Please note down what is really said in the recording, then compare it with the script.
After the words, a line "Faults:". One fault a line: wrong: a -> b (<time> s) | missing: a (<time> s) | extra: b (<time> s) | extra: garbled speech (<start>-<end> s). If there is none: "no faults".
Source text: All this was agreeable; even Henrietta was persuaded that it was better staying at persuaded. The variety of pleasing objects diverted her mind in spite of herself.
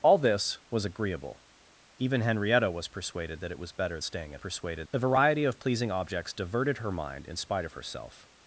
All this was agreeable; even Henrietta was persuaded that it was better staying at persuaded. The variety of pleasing objects diverted her mind in spite of herself.
Faults:
no faults